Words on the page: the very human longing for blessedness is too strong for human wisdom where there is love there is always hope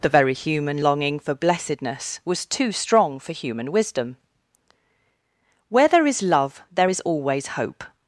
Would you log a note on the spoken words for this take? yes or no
yes